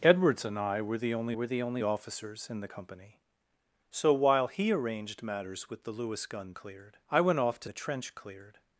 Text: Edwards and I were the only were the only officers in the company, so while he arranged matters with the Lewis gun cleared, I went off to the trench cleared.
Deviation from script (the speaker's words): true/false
false